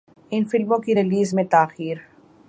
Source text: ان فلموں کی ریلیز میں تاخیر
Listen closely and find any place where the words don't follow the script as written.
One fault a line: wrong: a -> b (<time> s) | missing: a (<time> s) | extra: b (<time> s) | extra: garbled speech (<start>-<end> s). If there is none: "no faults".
no faults